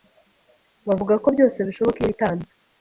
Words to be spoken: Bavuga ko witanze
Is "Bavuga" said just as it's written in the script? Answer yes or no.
yes